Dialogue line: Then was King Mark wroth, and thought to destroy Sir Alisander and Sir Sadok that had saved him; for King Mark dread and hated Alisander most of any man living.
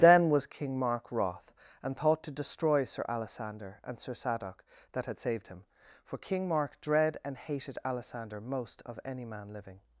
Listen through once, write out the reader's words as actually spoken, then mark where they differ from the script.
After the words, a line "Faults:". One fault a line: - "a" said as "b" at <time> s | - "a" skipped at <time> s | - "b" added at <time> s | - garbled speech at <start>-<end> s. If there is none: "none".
Then was King Mark wroth, and thought to destroy Sir Alisander and Sir Sadok that had saved him; for King Mark dread and hated Alisander most of any man living.
Faults:
none